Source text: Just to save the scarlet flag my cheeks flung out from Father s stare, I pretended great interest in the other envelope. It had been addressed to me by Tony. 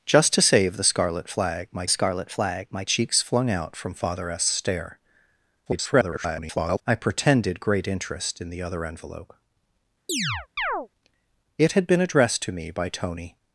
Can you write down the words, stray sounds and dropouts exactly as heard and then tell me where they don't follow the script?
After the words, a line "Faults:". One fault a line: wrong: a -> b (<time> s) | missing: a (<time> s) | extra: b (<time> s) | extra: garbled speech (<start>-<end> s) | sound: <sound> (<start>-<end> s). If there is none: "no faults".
Just to save the scarlet flag my scarlet flag my cheeks flung out from Father s stare, [garbled] I pretended great interest in the other envelope. It had been addressed to me by Tony.
Faults:
extra: scarlet flag my (1.9 s)
extra: garbled speech (5.7-6.8 s)
sound: chirp (10.1-10.9 s)